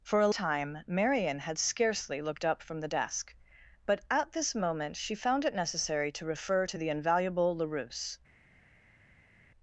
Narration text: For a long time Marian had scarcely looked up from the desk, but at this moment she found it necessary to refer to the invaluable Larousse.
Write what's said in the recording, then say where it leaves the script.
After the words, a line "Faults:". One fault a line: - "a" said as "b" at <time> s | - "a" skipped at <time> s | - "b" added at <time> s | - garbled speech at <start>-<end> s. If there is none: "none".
For a time Marian had scarcely looked up from the desk, but at this moment she found it necessary to refer to the invaluable Larousse.
Faults:
- "long" skipped at 0.3 s